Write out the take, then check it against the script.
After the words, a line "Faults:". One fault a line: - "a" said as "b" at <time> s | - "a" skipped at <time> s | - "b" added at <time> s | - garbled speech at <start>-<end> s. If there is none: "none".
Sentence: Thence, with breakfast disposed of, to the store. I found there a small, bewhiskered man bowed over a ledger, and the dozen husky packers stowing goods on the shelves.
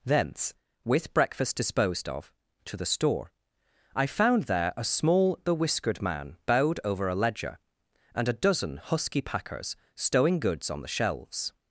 Thence, with breakfast disposed of, to the store. I found there a small, bewhiskered man bowed over a ledger, and a dozen husky packers stowing goods on the shelves.
Faults:
- "the" said as "a" at 8.3 s